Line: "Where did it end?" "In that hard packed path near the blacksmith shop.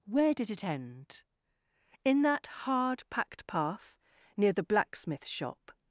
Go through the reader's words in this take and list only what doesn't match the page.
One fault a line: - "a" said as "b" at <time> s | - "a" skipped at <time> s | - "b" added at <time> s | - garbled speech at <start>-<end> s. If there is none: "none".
none